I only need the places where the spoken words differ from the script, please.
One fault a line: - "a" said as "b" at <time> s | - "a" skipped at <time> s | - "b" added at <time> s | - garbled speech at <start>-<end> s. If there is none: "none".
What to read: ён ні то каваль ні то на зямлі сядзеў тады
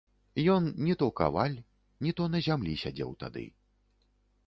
none